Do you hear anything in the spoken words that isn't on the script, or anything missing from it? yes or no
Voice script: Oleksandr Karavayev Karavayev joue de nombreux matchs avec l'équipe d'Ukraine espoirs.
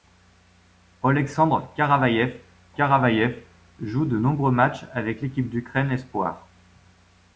no